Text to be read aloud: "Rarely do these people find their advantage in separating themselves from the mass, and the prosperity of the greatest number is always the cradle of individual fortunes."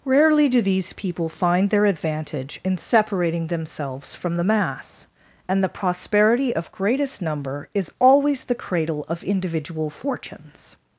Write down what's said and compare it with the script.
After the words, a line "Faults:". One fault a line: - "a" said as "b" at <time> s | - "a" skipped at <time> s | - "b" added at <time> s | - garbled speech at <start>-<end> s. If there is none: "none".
"Rarely do these people find their advantage in separating themselves from the mass, and the prosperity of greatest number is always the cradle of individual fortunes."
Faults:
- "the" skipped at 6.7 s